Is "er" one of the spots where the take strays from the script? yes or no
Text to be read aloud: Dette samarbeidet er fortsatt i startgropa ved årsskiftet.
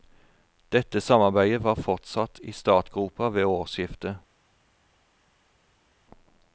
yes